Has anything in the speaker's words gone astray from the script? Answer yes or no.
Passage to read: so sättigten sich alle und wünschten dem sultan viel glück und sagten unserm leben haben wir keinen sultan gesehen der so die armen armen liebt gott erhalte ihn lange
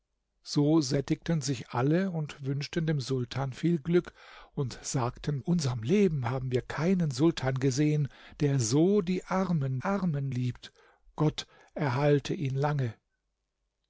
no